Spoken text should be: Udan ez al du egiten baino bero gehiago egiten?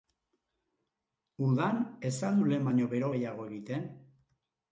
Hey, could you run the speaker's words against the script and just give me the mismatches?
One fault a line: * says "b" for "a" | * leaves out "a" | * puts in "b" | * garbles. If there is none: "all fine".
* says "lehen" for "egiten"